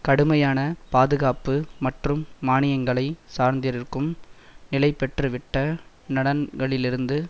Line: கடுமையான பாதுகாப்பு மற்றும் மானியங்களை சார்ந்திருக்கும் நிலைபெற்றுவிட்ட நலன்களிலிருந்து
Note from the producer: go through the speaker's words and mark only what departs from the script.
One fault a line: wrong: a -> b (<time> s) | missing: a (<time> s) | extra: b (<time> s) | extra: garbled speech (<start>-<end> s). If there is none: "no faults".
no faults